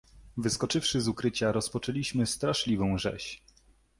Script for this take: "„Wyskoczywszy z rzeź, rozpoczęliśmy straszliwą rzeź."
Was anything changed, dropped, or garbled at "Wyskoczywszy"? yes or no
no